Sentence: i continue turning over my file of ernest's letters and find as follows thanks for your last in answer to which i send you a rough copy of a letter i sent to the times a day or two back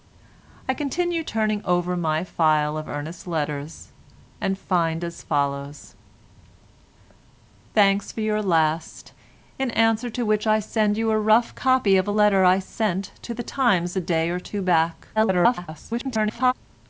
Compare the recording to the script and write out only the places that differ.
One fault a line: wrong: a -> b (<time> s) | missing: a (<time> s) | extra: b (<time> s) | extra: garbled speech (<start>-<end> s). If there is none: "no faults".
extra: garbled speech (15.2-16.5 s)